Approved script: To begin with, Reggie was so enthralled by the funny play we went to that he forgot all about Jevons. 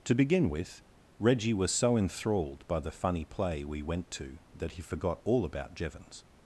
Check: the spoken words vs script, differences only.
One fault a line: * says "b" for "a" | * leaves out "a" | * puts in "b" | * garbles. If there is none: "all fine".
all fine